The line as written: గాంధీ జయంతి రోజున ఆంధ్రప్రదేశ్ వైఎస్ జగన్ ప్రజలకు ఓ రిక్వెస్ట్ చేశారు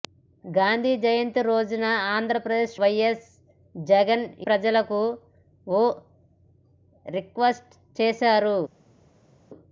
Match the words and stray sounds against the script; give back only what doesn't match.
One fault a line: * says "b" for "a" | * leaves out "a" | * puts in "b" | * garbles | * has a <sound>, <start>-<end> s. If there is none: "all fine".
all fine